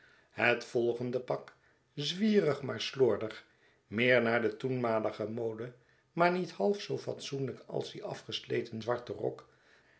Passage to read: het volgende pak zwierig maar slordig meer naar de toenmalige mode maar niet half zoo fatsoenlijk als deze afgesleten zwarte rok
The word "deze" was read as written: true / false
false